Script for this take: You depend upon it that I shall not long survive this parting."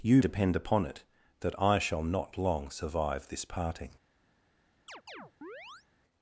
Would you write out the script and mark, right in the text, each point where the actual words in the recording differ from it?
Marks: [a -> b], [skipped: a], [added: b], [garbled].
You depend upon it that I shall not long survive this parting."